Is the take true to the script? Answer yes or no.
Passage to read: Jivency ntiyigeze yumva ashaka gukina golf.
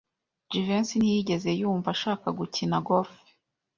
yes